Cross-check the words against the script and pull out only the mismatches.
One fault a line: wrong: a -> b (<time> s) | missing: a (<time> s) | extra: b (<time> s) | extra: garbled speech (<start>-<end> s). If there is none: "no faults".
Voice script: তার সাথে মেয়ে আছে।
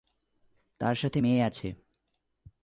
no faults